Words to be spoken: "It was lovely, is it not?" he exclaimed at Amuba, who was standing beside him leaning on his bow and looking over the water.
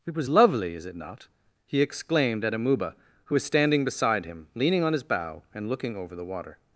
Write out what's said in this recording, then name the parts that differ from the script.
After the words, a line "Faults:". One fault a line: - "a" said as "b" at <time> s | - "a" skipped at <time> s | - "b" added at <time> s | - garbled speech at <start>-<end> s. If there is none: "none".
"It was lovely, is it not?" he exclaimed at Amuba, who was standing beside him leaning on his bow and looking over the water.
Faults:
none